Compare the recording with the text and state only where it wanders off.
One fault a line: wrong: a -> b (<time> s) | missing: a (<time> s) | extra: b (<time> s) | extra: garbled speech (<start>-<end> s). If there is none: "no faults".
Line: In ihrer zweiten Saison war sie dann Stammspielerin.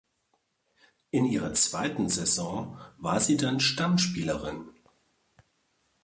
no faults